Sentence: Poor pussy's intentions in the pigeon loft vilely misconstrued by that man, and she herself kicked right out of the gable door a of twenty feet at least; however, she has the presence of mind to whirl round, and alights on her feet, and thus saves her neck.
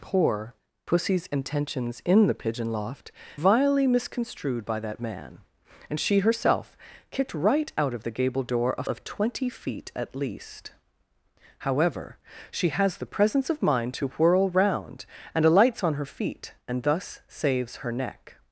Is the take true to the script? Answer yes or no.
yes